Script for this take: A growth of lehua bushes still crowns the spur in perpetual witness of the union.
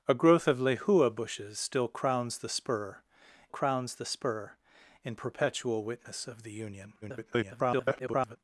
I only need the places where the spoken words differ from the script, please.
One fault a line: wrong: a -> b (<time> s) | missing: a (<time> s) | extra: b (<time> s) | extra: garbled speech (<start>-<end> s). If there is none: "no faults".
extra: crowns the spur (3.5 s)
extra: garbled speech (7.0-8.4 s)